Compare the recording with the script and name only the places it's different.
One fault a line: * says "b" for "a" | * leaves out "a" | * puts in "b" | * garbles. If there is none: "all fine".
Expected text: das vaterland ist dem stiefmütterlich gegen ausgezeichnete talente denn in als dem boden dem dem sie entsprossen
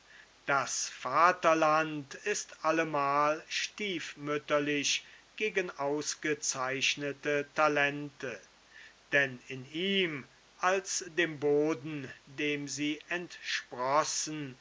* says "allemal" for "dem"
* puts in "ihm"
* leaves out "dem"